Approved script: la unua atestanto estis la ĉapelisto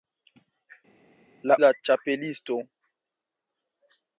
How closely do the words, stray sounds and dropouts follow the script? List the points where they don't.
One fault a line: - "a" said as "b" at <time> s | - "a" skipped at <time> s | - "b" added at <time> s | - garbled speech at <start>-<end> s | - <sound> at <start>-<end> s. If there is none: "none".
- "unua atestanto estis" skipped at 1.6 s